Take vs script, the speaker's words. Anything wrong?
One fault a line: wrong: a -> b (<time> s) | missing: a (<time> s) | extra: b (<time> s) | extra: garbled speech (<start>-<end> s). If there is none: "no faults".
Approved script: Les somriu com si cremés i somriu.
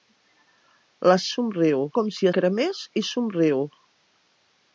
no faults